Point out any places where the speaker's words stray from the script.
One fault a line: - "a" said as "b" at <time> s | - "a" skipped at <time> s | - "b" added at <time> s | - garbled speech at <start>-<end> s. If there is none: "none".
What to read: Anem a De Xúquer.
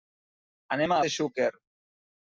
none